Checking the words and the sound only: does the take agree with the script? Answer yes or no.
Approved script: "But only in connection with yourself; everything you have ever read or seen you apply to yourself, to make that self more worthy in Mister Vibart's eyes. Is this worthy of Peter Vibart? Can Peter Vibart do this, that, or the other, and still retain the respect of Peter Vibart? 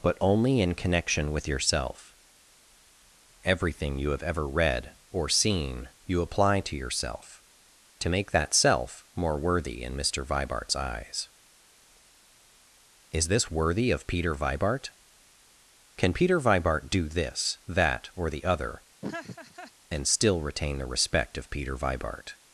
no